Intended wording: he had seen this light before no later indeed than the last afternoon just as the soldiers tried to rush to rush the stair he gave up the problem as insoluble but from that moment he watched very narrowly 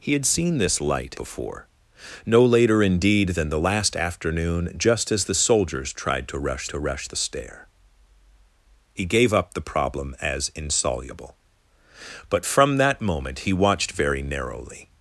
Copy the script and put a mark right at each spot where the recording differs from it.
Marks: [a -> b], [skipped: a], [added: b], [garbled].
he had seen this light before no later indeed than the last afternoon just as the soldiers tried to rush to rush the stair he gave up the problem as insoluble but from that moment he watched very narrowly